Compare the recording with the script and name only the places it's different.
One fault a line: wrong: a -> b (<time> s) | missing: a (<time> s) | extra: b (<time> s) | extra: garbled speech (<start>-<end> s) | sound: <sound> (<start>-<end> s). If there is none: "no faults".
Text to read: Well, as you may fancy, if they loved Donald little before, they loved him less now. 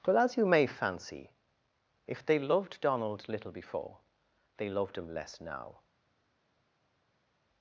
no faults